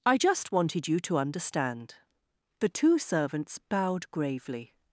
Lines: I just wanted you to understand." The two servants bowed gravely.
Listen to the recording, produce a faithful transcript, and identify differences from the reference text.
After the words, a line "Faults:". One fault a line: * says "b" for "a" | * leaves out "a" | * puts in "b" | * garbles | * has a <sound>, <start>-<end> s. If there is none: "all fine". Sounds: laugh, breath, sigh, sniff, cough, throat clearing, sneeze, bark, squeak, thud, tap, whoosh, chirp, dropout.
I just wanted you to understand." The two servants bowed gravely.
Faults:
all fine